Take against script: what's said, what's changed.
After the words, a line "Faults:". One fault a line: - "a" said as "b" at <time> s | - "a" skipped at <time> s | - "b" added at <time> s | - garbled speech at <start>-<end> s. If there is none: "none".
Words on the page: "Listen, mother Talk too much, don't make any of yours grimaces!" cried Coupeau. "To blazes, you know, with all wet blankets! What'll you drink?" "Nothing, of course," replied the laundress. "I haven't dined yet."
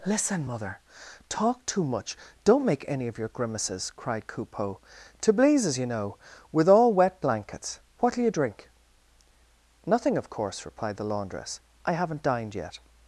"Listen, mother Talk too much, don't make any of your grimaces!" cried Coupeau. "To blazes, you know, with all wet blankets! What'll you drink?" "Nothing, of course," replied the laundress. "I haven't dined yet."
Faults:
- "yours" said as "your" at 3.2 s